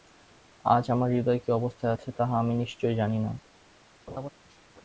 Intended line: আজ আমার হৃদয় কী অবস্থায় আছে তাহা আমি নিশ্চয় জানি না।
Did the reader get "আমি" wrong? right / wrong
right